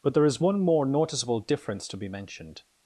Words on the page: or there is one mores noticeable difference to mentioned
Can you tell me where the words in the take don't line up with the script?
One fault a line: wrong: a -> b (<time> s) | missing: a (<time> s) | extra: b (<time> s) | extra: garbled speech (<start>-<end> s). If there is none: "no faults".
wrong: or -> but (0.0 s)
wrong: mores -> more (0.6 s)
extra: be (2.0 s)